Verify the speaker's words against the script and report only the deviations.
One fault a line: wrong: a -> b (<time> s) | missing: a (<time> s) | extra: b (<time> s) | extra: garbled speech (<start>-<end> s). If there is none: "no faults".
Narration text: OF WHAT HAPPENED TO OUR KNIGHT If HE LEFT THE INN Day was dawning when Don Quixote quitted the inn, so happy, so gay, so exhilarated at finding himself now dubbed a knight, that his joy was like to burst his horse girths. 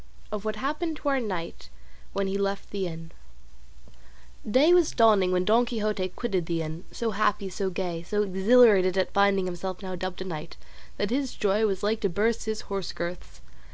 wrong: If -> WHEN (2.1 s)